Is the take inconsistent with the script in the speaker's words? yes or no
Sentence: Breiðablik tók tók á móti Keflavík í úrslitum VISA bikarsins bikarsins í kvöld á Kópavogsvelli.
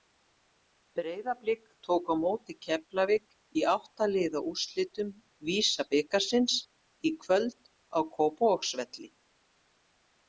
yes